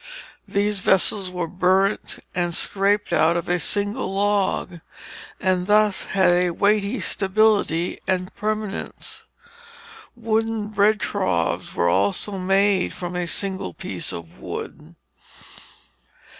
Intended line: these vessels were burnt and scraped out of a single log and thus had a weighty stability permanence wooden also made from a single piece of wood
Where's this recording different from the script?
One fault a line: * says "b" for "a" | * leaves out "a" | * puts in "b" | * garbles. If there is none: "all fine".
* puts in "and"
* puts in "bread troughs were"